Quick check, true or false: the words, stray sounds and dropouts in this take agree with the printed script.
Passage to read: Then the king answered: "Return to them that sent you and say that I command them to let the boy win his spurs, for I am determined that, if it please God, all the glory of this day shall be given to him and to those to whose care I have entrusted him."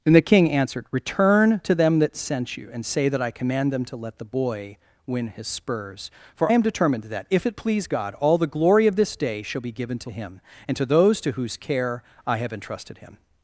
false